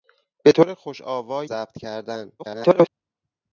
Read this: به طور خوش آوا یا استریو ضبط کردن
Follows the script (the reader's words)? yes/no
no